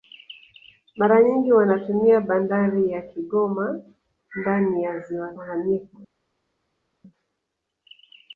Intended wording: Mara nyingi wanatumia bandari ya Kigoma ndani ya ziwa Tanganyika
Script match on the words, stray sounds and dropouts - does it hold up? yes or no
yes